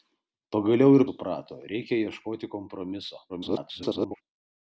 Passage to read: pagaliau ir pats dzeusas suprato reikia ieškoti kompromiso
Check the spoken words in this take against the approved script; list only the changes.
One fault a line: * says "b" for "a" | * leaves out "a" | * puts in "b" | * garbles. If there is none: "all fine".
* leaves out "pats dzeusas"
* garbles